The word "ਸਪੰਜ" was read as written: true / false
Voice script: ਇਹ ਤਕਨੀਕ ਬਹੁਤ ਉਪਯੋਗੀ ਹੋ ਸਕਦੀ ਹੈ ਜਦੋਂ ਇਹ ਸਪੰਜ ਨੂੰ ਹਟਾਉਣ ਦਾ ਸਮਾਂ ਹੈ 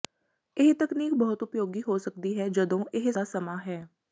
false